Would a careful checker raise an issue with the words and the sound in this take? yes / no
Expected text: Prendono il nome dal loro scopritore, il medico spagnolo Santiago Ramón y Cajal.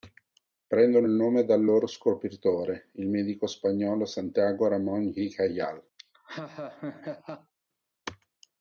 yes